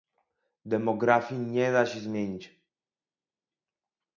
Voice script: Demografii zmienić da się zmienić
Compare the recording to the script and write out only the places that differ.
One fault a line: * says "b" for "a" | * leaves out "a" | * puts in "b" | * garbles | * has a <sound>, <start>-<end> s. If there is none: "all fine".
* says "nie" for "zmienić"